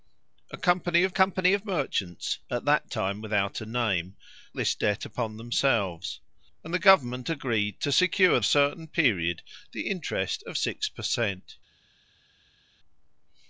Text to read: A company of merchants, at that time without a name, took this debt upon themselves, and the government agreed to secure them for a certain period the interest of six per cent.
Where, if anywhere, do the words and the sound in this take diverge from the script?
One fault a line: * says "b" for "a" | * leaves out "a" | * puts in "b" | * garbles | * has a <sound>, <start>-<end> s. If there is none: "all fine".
* puts in "company of"
* leaves out "took"
* leaves out "them for"